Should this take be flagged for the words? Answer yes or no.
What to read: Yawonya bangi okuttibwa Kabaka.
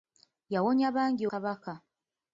yes